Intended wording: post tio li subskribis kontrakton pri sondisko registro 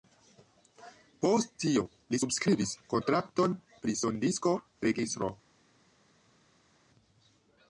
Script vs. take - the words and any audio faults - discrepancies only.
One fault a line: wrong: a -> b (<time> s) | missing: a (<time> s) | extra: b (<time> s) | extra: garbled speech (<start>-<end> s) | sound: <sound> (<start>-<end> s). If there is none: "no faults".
no faults